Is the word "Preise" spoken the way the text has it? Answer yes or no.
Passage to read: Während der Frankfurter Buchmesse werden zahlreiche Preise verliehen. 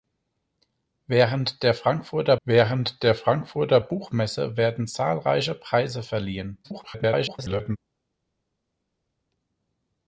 yes